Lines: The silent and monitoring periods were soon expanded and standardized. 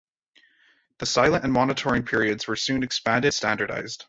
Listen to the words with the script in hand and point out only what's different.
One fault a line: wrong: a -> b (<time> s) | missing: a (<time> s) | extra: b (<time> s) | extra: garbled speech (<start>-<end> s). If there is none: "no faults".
missing: and (3.3 s)